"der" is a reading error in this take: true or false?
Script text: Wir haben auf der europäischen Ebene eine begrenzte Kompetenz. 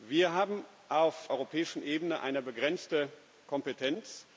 true